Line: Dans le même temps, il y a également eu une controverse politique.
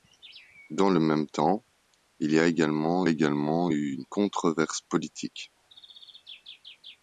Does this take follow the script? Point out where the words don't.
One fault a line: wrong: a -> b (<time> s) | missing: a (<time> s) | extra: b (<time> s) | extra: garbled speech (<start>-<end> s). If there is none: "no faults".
extra: également (3.1 s)